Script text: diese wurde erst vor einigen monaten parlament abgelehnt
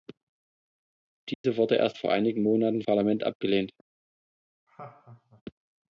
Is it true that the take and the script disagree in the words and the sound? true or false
true